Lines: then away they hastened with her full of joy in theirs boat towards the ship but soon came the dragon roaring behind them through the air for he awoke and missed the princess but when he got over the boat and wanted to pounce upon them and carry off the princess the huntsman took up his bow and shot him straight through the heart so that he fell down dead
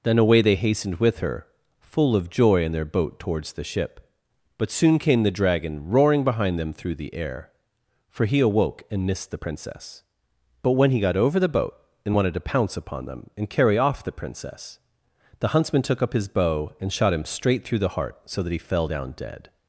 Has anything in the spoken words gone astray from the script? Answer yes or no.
yes